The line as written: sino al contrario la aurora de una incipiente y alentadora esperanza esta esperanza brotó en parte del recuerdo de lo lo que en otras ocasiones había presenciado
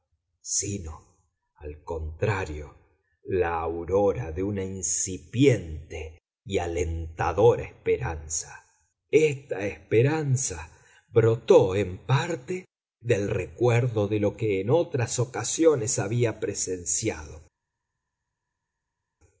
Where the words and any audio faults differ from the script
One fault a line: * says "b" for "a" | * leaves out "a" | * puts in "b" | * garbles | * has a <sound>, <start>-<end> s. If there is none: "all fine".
* leaves out "lo"